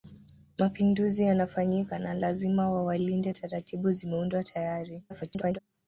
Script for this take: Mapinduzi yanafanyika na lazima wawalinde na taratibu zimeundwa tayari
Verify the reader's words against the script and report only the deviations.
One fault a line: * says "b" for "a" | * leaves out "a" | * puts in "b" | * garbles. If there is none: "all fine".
* leaves out "na"
* garbles